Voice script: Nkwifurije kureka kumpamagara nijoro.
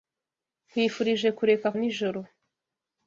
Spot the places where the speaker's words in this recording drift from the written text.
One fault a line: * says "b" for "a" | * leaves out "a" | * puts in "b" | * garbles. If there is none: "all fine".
* leaves out "kumpamagara"